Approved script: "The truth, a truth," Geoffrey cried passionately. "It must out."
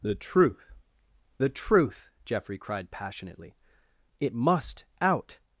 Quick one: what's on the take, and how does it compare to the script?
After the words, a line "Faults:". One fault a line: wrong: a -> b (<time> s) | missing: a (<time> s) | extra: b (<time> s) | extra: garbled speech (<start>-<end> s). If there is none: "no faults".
"The truth, the truth," Geoffrey cried passionately. "It must out."
Faults:
wrong: a -> the (1.4 s)